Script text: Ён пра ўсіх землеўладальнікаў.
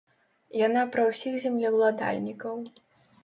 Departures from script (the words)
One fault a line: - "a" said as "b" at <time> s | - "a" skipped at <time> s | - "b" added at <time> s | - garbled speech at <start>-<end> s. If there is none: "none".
- "Ён" said as "Яна" at 0.7 s